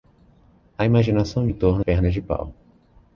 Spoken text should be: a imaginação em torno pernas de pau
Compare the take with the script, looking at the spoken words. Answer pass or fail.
pass